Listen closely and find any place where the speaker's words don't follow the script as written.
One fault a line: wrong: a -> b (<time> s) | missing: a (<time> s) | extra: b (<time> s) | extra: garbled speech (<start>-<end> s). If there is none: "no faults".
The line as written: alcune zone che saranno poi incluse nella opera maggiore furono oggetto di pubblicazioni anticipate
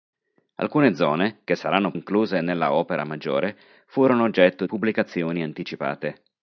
missing: poi (1.9 s)
missing: di (4.7 s)